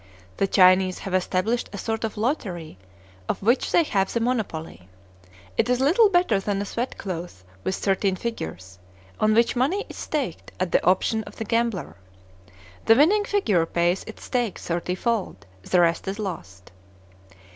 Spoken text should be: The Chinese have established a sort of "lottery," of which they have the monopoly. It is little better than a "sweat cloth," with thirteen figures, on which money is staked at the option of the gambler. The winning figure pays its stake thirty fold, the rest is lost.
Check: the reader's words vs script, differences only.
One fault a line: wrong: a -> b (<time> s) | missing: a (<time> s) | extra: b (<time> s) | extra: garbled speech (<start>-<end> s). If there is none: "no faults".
no faults